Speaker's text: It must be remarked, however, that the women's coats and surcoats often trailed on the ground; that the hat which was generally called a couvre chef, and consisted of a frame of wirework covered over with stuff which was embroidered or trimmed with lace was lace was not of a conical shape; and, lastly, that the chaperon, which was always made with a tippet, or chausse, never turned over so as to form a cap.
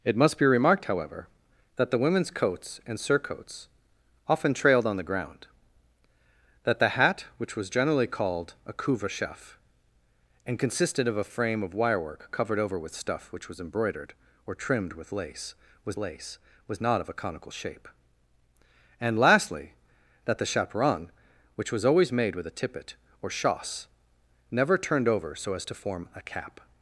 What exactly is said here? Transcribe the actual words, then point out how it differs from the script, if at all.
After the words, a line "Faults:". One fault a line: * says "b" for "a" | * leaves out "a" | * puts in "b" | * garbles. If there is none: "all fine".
It must be remarked, however, that the women's coats and surcoats often trailed on the ground; that the hat which was generally called a couvre chef, and consisted of a frame of wirework covered over with stuff which was embroidered or trimmed with lace was lace was not of a conical shape; and, lastly, that the chaperon, which was always made with a tippet, or chausse, never turned over so as to form a cap.
Faults:
all fine